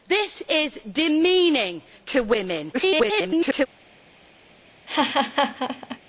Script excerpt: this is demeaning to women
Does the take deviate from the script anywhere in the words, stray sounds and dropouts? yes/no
yes